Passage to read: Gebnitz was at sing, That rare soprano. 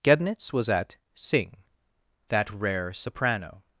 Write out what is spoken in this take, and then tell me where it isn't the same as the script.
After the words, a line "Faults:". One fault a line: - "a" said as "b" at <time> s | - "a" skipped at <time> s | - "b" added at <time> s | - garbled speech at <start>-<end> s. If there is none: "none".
Gebnitz was at sing, That rare soprano.
Faults:
none